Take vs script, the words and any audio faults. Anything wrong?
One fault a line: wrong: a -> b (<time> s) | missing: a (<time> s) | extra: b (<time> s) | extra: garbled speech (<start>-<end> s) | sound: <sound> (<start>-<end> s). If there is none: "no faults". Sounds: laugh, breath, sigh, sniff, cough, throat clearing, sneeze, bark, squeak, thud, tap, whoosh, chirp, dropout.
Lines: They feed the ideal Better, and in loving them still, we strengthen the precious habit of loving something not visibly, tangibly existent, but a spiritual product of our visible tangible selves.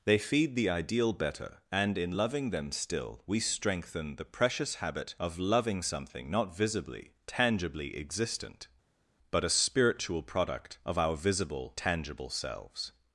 no faults